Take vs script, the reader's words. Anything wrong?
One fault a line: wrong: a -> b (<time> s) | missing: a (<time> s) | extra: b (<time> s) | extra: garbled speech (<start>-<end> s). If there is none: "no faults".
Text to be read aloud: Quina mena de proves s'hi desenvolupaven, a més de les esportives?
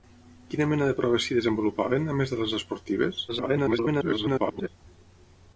extra: garbled speech (3.3-4.7 s)